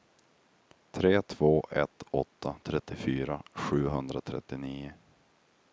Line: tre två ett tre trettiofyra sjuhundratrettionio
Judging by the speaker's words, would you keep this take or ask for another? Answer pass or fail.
fail